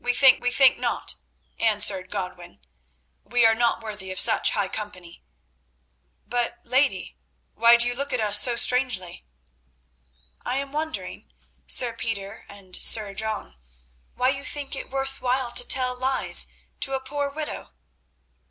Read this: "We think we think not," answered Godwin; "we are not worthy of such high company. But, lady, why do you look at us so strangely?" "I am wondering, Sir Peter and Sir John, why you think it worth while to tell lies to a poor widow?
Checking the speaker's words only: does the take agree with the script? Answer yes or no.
yes